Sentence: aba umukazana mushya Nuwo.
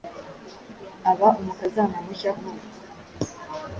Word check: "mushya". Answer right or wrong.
right